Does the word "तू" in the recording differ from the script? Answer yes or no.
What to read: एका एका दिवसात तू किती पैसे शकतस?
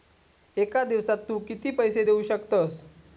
no